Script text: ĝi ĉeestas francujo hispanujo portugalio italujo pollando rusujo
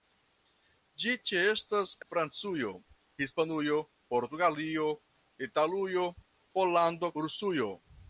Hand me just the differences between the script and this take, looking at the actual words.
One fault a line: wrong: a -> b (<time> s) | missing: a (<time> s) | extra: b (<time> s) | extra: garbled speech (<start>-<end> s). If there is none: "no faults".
no faults